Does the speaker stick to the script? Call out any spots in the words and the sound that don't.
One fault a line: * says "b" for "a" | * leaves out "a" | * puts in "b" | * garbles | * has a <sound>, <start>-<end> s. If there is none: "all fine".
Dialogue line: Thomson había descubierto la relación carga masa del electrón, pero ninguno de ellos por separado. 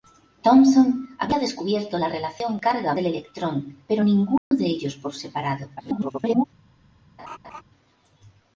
* leaves out "masa"
* has a dropout, 4.4-4.5 s
* garbles
* has a laugh, 7.2-7.6 s